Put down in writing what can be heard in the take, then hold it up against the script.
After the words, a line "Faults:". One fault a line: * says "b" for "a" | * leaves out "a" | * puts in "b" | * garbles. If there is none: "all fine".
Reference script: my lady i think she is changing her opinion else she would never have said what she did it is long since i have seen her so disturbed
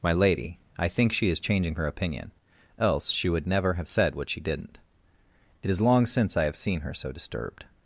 my lady i think she is changing her opinion else she would never have said what she didn't it is long since i have seen her so disturbed
Faults:
* says "didn't" for "did"